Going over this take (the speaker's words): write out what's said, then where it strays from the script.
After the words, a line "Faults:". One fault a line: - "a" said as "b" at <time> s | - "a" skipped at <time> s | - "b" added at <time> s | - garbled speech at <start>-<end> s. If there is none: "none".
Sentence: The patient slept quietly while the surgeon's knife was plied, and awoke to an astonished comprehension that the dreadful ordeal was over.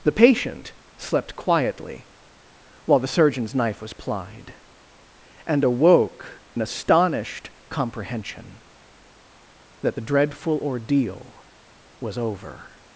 The patient slept quietly while the surgeon's knife was plied, and awoke an astonished comprehension that the dreadful ordeal was over.
Faults:
- "to" skipped at 6.4 s